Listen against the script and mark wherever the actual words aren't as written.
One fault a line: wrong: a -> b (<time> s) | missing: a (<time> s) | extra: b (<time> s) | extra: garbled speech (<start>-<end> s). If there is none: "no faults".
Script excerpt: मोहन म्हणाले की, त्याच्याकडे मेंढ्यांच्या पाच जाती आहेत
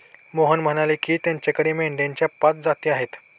no faults